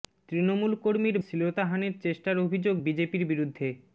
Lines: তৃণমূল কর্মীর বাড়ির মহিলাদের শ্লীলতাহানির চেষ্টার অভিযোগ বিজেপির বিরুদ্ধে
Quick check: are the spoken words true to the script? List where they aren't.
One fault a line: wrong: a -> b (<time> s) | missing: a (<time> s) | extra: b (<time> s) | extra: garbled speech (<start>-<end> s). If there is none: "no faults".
missing: বাড়ির মহিলাদের (1.2 s)